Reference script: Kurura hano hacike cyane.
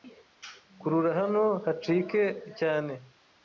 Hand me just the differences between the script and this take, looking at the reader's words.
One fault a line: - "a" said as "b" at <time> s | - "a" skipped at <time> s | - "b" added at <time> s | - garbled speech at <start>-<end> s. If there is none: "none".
none